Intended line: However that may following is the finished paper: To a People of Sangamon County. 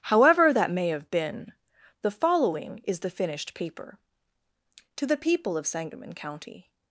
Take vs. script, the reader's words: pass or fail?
fail